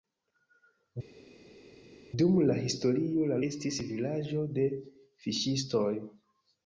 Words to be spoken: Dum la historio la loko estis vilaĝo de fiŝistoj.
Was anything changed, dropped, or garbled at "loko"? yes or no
yes